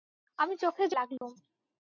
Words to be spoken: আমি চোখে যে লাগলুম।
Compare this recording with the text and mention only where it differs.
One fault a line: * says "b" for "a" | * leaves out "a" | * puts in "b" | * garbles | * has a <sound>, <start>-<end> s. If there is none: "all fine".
* has a dropout, 1.2-1.2 s